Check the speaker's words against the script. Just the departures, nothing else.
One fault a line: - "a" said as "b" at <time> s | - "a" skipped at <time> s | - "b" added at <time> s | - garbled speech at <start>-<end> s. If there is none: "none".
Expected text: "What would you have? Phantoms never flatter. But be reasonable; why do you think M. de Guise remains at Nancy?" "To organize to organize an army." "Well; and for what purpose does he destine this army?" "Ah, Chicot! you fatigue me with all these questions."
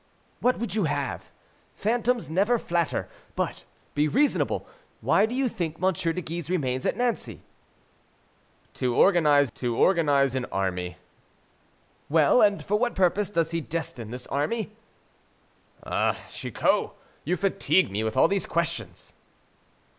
none